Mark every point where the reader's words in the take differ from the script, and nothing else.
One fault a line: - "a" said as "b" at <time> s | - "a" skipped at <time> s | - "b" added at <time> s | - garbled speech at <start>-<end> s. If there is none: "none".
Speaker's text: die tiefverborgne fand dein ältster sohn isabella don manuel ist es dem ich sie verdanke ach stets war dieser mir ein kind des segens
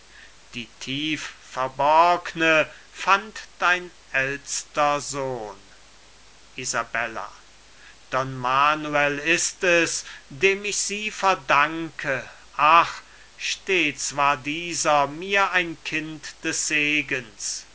none